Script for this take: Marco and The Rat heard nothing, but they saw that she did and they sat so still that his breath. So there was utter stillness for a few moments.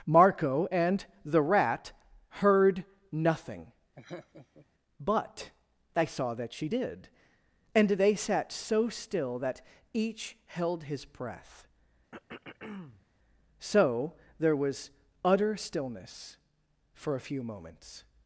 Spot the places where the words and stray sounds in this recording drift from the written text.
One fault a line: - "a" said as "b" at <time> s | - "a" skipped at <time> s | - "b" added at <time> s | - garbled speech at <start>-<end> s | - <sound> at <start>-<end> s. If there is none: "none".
- laugh at 4.0-4.7 s
- "each held" added at 9.9 s
- throat clearing at 12.1-13.1 s